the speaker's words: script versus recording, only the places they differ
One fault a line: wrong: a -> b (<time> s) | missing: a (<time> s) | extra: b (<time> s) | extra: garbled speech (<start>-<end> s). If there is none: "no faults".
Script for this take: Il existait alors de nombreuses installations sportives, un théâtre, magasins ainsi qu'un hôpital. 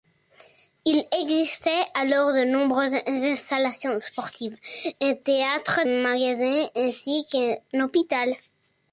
no faults